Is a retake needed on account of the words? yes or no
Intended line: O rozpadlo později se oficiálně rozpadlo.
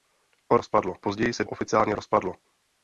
no